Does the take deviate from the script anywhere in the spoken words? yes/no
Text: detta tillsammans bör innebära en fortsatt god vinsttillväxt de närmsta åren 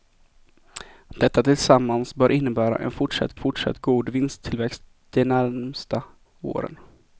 yes